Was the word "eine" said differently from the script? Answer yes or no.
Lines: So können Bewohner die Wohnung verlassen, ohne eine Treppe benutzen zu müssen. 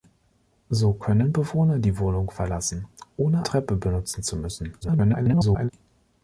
yes